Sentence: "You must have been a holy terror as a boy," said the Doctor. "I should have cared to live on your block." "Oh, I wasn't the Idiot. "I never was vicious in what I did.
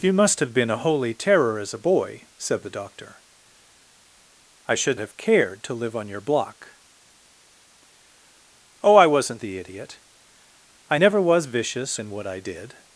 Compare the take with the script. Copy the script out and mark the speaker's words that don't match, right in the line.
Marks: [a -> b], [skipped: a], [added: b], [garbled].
"You must have been a holy terror as a boy," said the Doctor. "I should have cared to live on your block." "Oh, I wasn't the Idiot. "I never was vicious in what I did.